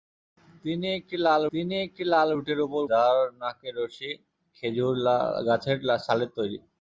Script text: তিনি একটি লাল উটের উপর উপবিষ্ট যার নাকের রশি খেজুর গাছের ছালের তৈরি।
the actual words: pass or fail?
fail